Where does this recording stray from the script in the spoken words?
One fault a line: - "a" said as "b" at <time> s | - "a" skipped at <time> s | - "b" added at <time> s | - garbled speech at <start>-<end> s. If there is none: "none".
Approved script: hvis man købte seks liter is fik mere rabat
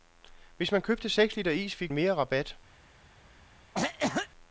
none